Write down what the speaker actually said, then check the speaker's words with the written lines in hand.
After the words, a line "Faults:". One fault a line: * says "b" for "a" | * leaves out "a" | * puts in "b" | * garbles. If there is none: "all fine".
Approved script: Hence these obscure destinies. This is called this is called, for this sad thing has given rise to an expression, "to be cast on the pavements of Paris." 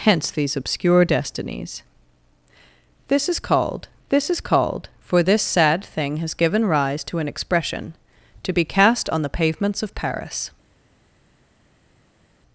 Hence these obscure destinies. This is called this is called, for this sad thing has given rise to an expression, "to be cast on the pavements of Paris."
Faults:
all fine